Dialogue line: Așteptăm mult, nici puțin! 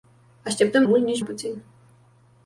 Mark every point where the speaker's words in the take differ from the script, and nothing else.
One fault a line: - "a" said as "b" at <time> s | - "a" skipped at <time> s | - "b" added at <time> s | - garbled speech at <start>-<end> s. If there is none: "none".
none